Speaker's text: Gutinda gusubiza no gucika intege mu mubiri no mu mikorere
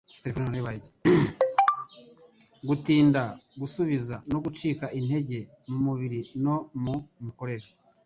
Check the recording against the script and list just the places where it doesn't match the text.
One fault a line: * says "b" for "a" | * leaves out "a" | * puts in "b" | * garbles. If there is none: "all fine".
all fine